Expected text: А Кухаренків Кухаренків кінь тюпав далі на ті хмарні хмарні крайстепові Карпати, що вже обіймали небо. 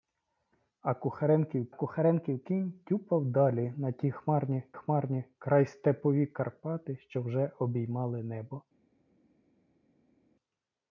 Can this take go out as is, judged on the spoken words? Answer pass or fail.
pass